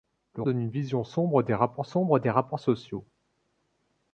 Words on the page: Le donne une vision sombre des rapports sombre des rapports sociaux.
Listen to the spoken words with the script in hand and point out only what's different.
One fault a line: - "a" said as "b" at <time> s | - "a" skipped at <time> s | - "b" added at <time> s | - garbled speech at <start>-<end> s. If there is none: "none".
none